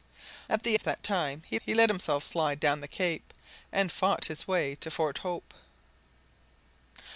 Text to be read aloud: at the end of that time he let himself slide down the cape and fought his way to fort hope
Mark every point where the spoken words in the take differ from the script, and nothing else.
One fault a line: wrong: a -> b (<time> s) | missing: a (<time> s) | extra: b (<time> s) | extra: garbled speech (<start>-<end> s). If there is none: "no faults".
missing: end (0.8 s)
extra: he (1.6 s)